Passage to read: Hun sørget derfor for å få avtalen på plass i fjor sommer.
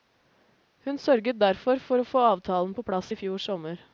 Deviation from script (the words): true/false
false